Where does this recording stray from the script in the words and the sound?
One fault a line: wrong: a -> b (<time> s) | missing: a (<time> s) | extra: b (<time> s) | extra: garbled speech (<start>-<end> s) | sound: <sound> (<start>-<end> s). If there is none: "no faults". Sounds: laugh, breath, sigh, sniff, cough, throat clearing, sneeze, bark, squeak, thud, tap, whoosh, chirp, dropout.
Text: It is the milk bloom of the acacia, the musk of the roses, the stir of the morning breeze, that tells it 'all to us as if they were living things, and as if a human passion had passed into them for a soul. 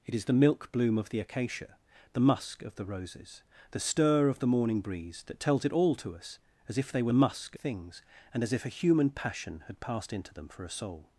wrong: living -> musk (7.1 s)